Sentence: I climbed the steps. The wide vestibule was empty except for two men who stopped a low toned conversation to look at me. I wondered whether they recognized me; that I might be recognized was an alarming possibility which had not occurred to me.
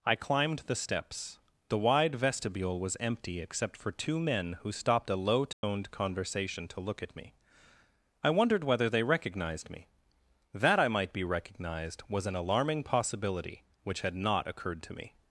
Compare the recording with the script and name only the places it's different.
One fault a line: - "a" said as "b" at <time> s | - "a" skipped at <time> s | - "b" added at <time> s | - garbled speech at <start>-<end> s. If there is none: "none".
none